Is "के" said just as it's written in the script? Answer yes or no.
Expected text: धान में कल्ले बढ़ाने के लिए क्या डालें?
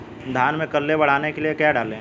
yes